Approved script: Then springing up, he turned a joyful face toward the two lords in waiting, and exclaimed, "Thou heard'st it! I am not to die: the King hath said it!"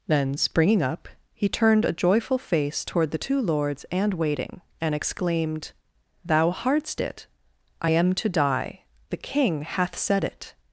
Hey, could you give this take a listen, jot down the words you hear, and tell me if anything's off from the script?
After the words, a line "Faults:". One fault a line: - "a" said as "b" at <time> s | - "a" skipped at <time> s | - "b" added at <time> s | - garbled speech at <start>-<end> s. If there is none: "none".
Then springing up, he turned a joyful face toward the two lords and waiting, and exclaimed, "Thou heard'st it! I am to die: the King hath said it!"
Faults:
- "in" said as "and" at 3.9 s
- "not" skipped at 8.1 s